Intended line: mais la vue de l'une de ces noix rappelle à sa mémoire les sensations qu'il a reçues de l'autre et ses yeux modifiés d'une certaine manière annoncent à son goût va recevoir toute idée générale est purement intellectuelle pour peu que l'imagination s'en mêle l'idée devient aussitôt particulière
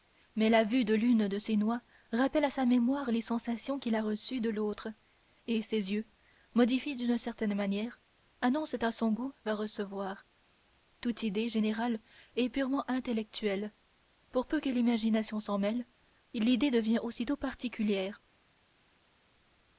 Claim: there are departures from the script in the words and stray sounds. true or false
false